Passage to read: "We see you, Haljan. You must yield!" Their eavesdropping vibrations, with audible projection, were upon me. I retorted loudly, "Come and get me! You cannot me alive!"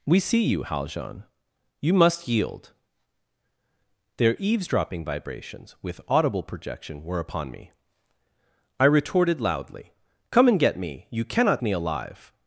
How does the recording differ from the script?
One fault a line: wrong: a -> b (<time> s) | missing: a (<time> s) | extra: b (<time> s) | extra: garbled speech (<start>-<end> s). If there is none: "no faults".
no faults